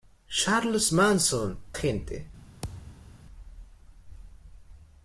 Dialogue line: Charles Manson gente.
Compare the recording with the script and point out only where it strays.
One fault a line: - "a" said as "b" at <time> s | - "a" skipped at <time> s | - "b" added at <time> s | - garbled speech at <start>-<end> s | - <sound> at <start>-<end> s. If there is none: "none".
- thud at 2.6-3.2 s